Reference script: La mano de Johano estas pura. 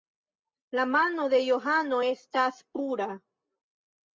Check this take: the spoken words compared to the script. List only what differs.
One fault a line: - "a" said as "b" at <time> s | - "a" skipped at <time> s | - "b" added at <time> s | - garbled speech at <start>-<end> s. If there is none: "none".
none